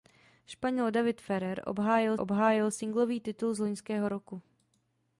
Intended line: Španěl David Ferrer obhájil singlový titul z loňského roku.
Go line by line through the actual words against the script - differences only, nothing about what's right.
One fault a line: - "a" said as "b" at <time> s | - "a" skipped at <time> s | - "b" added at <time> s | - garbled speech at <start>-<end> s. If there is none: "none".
- "obhájil" added at 2.2 s